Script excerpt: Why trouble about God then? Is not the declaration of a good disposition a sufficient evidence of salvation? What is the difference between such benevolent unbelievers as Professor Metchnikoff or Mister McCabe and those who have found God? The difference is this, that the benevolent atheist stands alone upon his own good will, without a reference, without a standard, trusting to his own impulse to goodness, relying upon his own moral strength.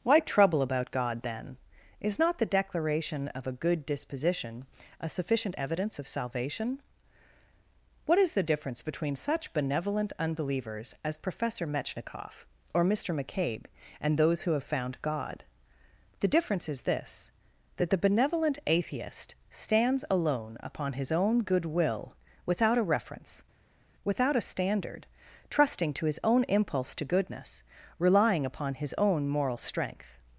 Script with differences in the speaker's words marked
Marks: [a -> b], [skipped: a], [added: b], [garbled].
Why trouble about God then? Is not the declaration of a good disposition a sufficient evidence of salvation? What is the difference between such benevolent unbelievers as Professor Metchnikoff or Mister McCabe and those who have found God? The difference is this, that the benevolent atheist stands alone upon his own good will, without a reference, without a standard, trusting to his own impulse to goodness, relying upon his own moral strength.